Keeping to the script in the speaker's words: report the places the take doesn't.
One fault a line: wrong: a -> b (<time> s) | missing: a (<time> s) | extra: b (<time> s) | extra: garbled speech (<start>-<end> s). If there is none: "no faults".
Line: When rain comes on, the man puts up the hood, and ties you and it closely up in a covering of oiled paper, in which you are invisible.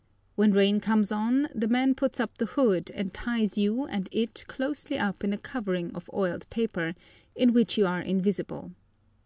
no faults